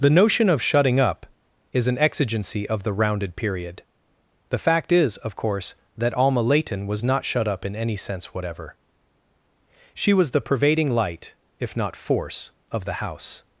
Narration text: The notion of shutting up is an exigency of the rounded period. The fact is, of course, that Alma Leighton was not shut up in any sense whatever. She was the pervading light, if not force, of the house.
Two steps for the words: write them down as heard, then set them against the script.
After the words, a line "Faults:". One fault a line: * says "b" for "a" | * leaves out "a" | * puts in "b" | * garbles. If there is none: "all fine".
The notion of shutting up is an exigency of the rounded period. The fact is, of course, that Alma Leighton was not shut up in any sense whatever. She was the pervading light, if not force, of the house.
Faults:
all fine